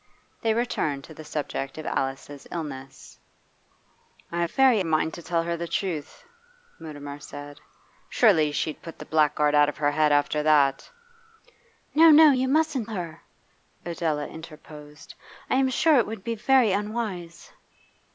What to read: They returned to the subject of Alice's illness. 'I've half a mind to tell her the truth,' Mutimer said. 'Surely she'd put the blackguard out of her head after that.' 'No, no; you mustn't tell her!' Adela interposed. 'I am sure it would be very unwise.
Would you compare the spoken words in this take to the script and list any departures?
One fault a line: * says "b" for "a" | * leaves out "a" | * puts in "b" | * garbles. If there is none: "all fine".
* says "very" for "half"
* leaves out "tell"